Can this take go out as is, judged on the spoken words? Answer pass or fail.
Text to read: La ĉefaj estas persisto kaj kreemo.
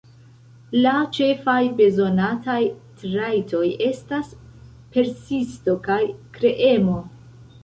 fail